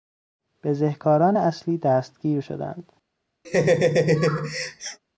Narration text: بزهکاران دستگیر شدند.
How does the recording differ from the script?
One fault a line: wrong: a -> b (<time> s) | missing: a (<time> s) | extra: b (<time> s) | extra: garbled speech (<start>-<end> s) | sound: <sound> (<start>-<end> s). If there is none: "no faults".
extra: اصلی (1.3 s)
sound: laugh (3.4-5.0 s)